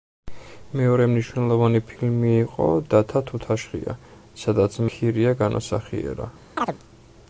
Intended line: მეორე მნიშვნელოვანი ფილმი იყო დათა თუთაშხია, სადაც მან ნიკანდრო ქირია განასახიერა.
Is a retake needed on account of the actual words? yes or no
yes